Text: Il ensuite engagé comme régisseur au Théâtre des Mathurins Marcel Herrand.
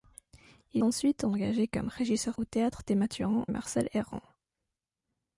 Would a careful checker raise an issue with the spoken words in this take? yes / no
no